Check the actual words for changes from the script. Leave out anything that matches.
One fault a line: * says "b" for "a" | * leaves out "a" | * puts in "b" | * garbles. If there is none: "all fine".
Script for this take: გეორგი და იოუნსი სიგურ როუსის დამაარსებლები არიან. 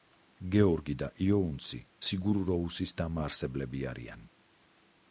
all fine